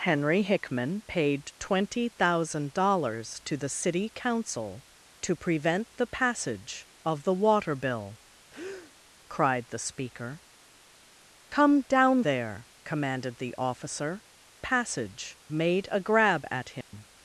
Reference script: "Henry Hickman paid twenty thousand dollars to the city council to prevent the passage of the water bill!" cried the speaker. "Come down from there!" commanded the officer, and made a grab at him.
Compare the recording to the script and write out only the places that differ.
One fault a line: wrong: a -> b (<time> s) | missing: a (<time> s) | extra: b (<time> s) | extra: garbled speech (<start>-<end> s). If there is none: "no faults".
missing: from (12.2 s)
wrong: and -> passage (14.6 s)